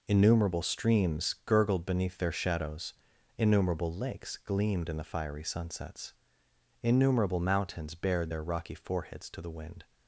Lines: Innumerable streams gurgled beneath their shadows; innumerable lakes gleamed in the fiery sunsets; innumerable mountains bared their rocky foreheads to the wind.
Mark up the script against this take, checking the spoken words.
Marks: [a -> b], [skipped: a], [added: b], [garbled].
Innumerable streams gurgled beneath their shadows; innumerable lakes gleamed in the fiery sunsets; innumerable mountains bared their rocky foreheads to the wind.